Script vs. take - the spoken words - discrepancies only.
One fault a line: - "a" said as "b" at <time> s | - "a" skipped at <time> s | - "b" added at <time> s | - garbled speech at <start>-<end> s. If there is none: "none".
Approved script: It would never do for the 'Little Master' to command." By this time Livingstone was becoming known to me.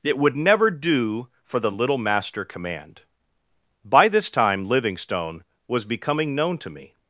- "to" skipped at 2.5 s